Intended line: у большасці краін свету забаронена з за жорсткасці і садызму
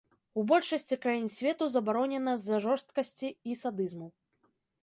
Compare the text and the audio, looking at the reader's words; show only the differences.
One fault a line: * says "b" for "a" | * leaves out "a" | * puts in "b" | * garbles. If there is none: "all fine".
all fine